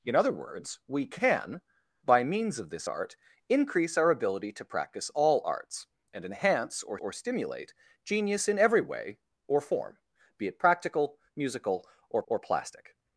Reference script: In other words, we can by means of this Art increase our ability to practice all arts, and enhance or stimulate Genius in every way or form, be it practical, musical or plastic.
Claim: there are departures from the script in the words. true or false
true